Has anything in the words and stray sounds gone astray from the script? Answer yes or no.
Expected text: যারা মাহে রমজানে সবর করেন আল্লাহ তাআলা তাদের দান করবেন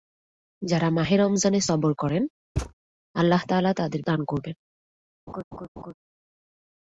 yes